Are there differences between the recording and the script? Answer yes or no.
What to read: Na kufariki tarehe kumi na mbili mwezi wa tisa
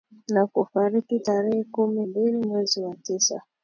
yes